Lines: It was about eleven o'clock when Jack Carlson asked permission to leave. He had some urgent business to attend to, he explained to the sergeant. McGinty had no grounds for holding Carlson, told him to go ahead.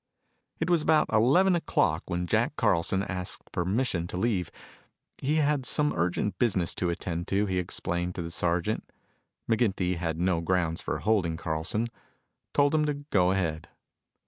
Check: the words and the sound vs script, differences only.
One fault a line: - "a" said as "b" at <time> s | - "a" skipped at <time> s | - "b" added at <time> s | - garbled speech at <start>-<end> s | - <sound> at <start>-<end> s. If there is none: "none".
none